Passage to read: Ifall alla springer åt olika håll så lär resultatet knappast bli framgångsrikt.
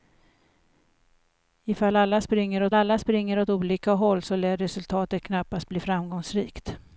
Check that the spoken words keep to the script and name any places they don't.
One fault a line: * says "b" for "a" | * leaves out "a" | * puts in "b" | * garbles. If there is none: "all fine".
* puts in "alla springer åt"